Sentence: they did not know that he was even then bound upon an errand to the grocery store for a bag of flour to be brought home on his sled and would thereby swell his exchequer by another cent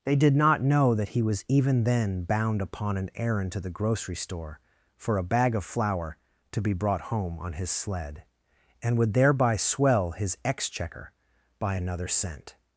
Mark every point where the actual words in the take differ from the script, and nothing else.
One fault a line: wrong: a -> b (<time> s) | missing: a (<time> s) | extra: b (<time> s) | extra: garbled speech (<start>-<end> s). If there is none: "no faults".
no faults